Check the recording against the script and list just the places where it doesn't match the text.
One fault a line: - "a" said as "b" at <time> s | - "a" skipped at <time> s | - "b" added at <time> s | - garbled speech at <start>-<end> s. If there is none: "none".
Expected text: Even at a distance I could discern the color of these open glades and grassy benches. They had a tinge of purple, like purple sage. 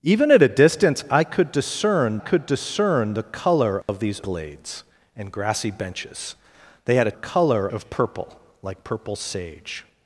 - "could discern" added at 2.2 s
- "open" skipped at 4.2 s
- "tinge" said as "color" at 7.1 s